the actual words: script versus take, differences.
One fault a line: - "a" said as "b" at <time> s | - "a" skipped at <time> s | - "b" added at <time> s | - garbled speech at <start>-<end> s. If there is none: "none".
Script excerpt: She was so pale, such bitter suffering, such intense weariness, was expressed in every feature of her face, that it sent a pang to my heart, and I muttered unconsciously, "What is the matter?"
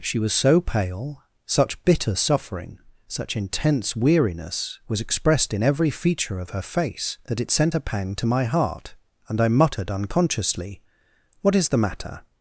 none